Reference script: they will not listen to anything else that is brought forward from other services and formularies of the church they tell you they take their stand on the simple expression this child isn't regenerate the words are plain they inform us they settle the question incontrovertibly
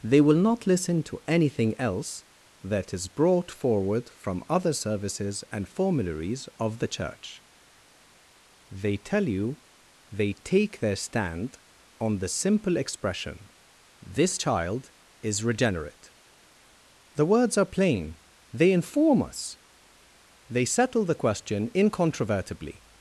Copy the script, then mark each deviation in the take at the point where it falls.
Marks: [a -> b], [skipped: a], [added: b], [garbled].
they will not listen to anything else that is brought forward from other services and formularies of the church they tell you they take their stand on the simple expression this child [isn't -> is] regenerate the words are plain they inform us they settle the question incontrovertibly